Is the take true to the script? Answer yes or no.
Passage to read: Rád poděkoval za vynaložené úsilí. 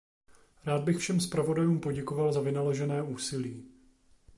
no